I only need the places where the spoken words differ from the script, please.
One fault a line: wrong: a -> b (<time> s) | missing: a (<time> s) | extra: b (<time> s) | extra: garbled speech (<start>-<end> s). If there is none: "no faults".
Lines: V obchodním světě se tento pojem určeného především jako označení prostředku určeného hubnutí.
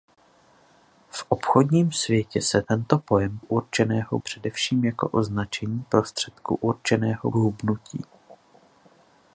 no faults